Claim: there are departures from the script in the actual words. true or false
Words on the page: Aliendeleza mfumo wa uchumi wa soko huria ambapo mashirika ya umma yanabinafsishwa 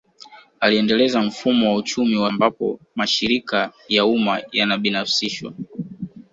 true